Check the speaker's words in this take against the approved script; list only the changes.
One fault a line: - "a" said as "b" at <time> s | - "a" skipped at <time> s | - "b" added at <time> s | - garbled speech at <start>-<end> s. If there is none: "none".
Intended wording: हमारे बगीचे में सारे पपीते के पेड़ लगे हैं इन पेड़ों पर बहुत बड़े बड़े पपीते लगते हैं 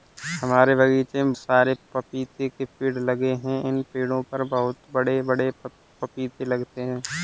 none